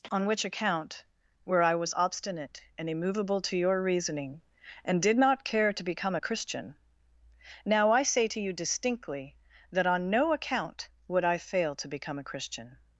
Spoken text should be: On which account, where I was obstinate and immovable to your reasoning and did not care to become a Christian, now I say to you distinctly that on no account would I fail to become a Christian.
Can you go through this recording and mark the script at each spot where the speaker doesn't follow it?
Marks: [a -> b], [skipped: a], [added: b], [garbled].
On which account, where I was obstinate and immovable to your reasoning and did not care to become a Christian, now I say to you distinctly that on no account would I fail to become a Christian.